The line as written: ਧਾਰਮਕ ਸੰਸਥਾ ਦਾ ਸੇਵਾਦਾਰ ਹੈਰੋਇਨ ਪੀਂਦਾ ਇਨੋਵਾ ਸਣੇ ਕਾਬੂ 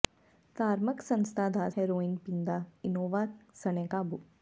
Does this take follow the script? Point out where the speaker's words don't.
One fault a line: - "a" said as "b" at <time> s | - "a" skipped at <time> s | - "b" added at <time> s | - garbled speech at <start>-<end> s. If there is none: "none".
- "ਸੇਵਾਦਾਰ" skipped at 1.7 s